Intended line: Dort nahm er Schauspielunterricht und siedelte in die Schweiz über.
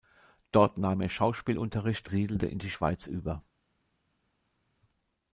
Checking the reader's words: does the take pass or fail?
fail